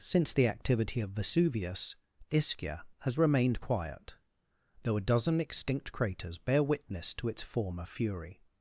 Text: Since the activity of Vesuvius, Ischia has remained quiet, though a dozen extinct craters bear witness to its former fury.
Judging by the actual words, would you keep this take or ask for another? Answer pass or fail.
pass